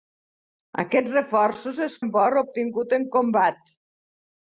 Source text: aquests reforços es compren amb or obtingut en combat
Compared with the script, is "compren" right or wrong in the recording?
wrong